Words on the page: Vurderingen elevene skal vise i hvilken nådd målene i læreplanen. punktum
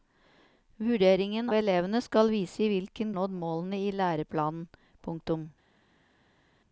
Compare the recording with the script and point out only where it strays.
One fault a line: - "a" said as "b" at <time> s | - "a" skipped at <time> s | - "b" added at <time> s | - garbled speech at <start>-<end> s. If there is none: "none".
none